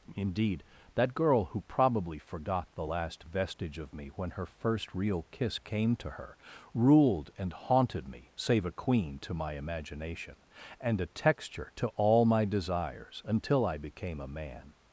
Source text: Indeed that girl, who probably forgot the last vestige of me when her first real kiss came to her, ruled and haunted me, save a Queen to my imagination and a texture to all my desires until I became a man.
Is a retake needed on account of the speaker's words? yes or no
no